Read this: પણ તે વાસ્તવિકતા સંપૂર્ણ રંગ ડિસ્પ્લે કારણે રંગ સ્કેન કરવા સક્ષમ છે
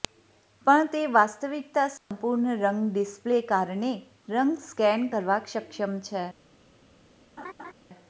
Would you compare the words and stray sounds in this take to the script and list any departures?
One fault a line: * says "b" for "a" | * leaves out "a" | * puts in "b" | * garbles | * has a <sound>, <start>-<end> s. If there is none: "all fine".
* has a dropout, 2.0-2.1 s
* has a laugh, 7.4-7.7 s